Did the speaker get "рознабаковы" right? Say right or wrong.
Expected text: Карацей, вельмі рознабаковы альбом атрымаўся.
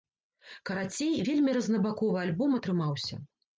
right